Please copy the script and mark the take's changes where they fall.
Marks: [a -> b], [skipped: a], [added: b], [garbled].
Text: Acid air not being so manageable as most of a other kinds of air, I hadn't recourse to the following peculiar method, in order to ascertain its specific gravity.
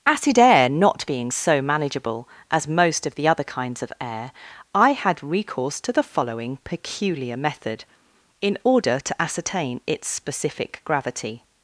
Acid air not being so manageable as most of [a -> the] other kinds of air, I [hadn't -> had] recourse to the following peculiar method, in order to ascertain its specific gravity.